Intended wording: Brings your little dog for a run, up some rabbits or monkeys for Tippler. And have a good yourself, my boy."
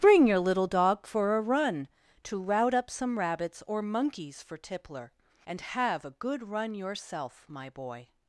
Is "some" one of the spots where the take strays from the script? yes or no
no